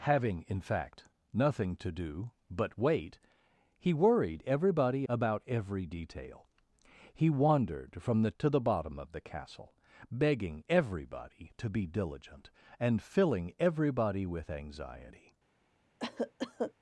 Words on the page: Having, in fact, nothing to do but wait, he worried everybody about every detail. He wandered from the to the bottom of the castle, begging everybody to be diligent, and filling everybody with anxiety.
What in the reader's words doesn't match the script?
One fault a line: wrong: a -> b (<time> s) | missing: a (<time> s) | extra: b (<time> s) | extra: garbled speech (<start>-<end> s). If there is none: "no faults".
no faults